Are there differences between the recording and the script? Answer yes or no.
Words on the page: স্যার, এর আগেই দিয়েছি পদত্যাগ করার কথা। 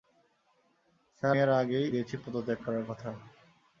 no